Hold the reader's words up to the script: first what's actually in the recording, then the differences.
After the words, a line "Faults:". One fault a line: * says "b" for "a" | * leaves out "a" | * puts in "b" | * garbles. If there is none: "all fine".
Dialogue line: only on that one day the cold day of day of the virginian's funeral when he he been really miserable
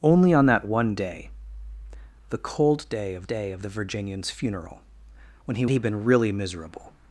only on that one day the cold day of day of the virginian's funeral when he he been really miserable
Faults:
all fine